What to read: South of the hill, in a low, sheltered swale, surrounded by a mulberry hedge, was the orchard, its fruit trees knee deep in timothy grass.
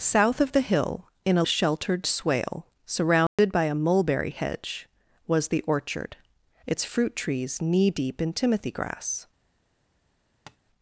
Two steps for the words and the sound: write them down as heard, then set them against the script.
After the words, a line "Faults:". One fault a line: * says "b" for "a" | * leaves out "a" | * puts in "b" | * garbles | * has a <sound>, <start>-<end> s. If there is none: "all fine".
South of the hill, in a sheltered swale, surrounded by a mulberry hedge, was the orchard, its fruit trees knee deep in timothy grass.
Faults:
* leaves out "low"
* has a dropout, 3.3-3.4 s
* has a tap, 10.5-10.6 s